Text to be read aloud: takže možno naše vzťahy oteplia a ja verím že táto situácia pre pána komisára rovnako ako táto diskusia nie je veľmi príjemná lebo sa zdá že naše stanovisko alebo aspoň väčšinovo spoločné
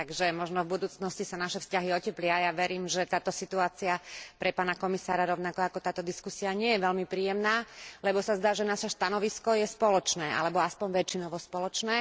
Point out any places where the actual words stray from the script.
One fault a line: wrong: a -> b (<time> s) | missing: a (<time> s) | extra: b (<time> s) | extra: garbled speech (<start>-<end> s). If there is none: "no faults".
extra: v budúcnosti sa (0.7 s)
extra: je spoločné (9.5 s)